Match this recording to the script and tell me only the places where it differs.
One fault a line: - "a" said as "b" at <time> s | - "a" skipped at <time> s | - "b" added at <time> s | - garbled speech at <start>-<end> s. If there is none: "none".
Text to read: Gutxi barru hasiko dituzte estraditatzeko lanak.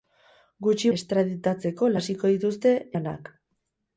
- "barru" said as "estraditatzeko" at 1.0 s
- "estraditatzeko" skipped at 2.7 s